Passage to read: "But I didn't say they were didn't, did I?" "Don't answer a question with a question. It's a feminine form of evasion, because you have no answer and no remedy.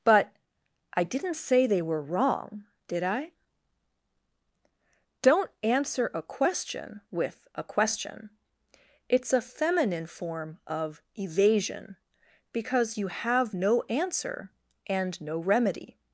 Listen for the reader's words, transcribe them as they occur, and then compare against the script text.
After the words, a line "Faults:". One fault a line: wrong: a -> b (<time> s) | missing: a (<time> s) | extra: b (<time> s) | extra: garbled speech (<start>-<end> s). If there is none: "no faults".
"But I didn't say they were wrong, did I?" "Don't answer a question with a question. It's a feminine form of evasion, because you have no answer and no remedy.
Faults:
wrong: didn't -> wrong (2.0 s)